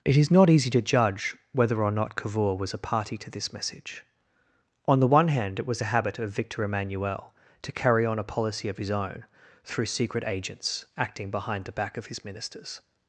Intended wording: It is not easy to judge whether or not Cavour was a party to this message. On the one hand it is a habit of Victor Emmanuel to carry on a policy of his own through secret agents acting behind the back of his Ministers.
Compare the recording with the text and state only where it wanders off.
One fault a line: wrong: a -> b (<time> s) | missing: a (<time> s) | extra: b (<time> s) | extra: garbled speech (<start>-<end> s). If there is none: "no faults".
wrong: is -> was (5.7 s)